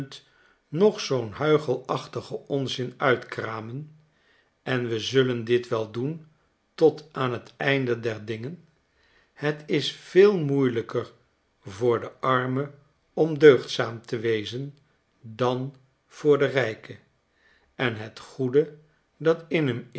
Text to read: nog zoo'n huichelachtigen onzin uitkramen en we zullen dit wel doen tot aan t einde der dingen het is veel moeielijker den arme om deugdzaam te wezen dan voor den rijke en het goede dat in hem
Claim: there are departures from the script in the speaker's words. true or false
true